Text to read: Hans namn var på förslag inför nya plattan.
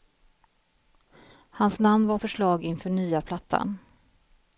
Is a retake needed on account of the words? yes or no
yes